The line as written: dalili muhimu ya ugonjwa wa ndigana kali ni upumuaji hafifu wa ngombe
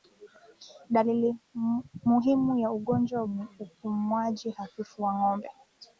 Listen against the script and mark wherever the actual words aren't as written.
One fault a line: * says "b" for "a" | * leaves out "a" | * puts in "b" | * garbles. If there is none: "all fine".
* leaves out "wa ndigana kali"